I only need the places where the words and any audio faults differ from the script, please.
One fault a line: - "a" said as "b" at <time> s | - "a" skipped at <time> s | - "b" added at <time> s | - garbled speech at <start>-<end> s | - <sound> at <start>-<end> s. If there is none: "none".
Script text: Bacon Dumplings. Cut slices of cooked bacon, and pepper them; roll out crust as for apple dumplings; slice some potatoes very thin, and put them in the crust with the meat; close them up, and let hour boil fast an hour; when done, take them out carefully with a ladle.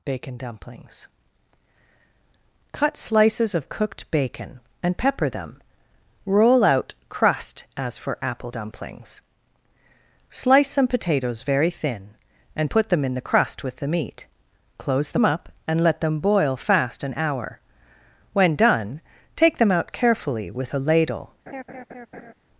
- "hour" said as "them" at 16.0 s
- laugh at 21.5-22.3 s